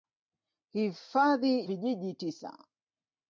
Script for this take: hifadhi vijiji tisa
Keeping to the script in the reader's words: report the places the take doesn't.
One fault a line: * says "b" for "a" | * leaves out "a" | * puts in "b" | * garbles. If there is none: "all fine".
all fine